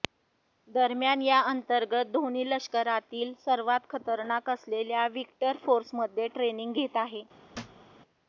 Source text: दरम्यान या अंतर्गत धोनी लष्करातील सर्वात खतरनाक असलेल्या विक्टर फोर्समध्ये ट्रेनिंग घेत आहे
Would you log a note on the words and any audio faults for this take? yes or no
yes